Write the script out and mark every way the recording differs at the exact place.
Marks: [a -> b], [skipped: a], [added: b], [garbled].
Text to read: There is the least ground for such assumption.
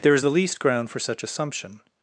There is the least ground for such assumption.